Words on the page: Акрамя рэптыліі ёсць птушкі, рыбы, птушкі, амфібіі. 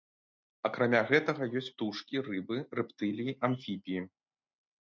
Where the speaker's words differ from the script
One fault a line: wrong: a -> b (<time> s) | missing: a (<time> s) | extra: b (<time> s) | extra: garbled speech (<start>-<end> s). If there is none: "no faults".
wrong: рэптыліі -> гэтага (1.1 s)
wrong: птушкі -> рэптыліі (2.8 s)